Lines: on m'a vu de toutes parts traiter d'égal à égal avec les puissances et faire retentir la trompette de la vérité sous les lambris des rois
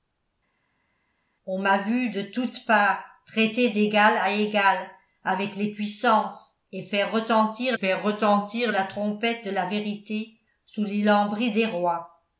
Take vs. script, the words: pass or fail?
fail